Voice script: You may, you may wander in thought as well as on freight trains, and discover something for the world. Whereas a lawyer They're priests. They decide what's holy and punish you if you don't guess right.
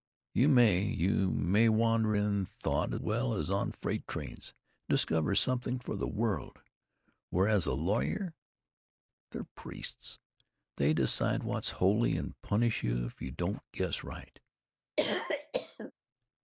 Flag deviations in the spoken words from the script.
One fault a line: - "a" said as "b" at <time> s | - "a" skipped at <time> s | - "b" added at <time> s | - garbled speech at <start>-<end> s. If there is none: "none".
- "as" skipped at 2.9 s